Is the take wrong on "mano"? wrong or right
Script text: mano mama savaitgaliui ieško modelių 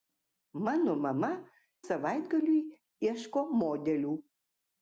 right